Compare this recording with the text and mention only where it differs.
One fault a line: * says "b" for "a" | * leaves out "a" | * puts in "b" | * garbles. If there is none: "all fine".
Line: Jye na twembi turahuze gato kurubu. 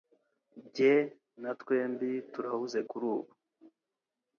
* leaves out "gato"